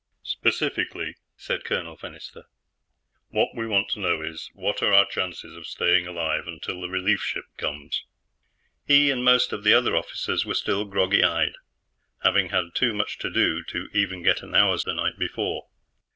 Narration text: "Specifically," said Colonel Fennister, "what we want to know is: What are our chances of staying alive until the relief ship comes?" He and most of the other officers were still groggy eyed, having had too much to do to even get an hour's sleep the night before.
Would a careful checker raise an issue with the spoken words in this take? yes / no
yes